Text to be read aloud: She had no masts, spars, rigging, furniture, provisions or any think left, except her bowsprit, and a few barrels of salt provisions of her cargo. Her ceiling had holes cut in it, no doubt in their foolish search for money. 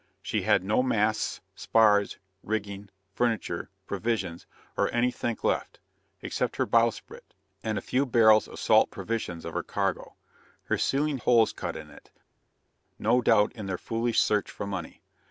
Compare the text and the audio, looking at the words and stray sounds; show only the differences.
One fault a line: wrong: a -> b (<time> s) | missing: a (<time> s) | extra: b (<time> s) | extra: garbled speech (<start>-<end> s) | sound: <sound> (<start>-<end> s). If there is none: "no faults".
missing: had (11.2 s)